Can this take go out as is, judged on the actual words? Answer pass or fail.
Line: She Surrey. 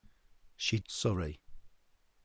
pass